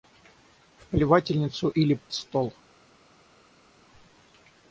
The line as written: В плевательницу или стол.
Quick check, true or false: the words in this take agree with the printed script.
true